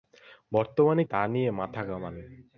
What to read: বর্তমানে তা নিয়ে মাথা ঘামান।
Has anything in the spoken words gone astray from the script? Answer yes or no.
no